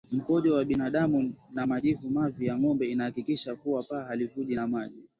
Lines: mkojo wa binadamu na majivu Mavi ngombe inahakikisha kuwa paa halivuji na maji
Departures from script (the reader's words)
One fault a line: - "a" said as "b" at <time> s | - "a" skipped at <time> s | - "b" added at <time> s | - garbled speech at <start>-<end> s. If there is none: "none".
- "ya" added at 2.5 s